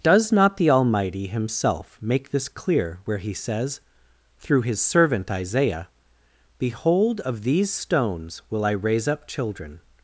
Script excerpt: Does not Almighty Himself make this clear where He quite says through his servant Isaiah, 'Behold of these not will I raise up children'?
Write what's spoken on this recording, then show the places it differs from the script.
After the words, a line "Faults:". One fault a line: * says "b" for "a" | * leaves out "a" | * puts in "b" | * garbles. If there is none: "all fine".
Does not the Almighty Himself make this clear where He says through his servant Isaiah, 'Behold of these stones will I raise up children'?
Faults:
* puts in "the"
* leaves out "quite"
* says "stones" for "not"